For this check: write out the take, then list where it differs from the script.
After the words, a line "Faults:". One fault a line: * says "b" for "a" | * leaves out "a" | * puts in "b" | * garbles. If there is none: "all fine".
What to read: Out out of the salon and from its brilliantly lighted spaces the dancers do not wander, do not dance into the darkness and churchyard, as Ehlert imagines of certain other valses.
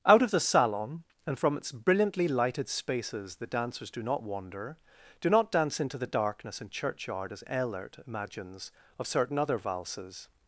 Out of the salon and from its brilliantly lighted spaces the dancers do not wander, do not dance into the darkness and churchyard, as Ehlert imagines of certain other valses.
Faults:
* leaves out "out"